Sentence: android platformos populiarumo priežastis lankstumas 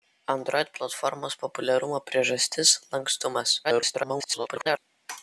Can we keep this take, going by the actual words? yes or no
no